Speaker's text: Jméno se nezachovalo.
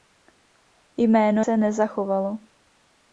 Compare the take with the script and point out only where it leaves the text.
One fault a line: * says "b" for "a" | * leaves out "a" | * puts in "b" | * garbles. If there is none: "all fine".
all fine